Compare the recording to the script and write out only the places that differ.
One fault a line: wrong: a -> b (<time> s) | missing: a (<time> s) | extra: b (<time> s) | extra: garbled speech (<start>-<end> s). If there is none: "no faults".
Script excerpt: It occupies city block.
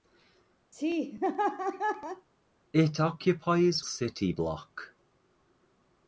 no faults